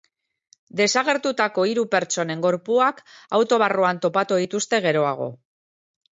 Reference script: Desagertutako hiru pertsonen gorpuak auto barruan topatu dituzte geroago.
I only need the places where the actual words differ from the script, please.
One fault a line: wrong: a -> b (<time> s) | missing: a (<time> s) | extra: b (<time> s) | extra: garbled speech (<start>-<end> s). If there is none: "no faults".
no faults